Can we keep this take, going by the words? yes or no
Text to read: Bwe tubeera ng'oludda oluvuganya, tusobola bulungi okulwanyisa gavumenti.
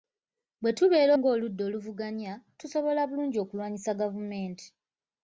yes